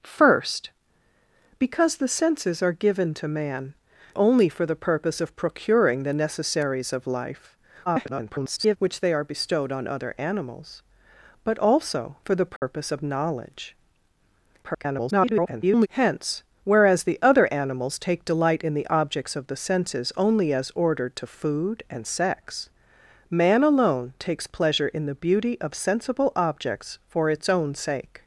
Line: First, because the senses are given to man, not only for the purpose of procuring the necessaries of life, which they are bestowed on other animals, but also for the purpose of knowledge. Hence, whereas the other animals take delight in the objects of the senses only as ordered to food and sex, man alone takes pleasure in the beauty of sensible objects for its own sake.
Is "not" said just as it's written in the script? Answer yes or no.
no